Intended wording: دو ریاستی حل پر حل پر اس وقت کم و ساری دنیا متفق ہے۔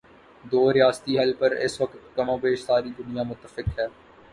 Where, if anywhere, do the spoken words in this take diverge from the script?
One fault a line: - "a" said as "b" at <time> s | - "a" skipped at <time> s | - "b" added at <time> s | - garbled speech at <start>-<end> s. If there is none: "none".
- "حل پر" skipped at 1.5 s
- "بیش" added at 2.4 s